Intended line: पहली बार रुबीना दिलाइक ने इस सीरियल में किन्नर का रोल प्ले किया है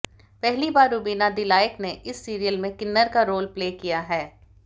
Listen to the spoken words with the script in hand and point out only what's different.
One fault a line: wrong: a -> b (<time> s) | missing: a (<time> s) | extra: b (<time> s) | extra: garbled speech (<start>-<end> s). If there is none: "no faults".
no faults